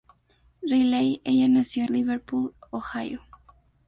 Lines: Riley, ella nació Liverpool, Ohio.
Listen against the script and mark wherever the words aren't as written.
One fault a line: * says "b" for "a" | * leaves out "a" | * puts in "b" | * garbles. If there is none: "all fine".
all fine